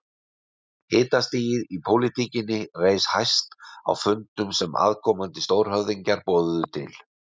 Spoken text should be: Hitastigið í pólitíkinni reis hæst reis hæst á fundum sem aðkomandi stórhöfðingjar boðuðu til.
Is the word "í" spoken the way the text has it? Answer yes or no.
yes